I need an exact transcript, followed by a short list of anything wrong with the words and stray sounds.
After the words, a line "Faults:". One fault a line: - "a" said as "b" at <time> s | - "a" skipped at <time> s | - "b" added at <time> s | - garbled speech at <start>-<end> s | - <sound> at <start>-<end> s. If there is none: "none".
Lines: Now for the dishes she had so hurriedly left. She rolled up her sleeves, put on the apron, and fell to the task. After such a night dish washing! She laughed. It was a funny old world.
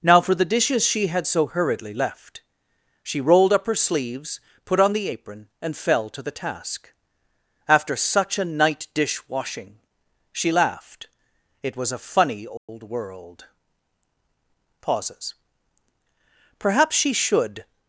Now for the dishes she had so hurriedly left. She rolled up her sleeves, put on the apron, and fell to the task. After such a night dish washing! She laughed. It was a funny old world. Pauses. Perhaps she should
Faults:
- dropout at 12.6-12.7 s
- "Pauses Perhaps she should" added at 14.8 s